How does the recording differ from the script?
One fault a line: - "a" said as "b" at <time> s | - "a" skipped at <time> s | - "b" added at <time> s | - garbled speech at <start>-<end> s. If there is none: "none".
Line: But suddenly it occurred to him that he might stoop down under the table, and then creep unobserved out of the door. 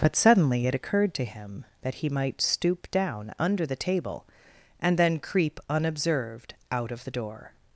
none